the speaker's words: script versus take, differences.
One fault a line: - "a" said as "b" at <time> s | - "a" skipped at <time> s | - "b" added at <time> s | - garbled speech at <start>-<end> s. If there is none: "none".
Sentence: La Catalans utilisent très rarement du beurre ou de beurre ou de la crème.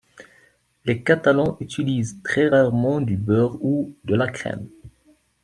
- "La" said as "Les" at 0.8 s
- "beurre ou de" skipped at 4.1 s